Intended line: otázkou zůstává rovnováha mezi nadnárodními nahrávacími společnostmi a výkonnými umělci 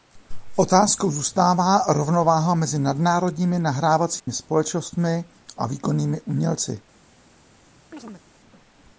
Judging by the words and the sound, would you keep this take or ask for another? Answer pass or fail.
fail